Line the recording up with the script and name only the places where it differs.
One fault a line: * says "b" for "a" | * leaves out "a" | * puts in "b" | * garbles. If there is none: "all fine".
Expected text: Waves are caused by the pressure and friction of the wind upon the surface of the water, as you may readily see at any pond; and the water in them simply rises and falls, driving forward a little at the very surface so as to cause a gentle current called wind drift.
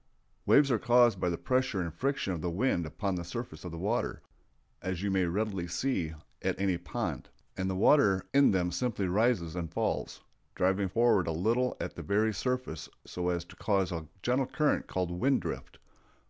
all fine